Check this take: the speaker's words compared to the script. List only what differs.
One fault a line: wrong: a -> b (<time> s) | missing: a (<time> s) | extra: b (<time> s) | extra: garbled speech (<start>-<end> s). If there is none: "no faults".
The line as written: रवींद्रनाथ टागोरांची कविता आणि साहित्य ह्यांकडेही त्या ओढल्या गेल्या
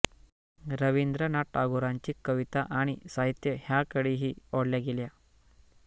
missing: त्या (4.3 s)